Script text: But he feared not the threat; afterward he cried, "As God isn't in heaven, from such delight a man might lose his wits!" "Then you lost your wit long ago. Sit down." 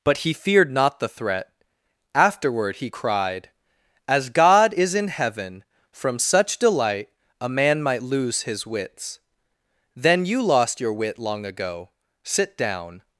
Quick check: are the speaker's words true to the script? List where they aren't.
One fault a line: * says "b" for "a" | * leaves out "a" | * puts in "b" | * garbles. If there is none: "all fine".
* says "is" for "isn't"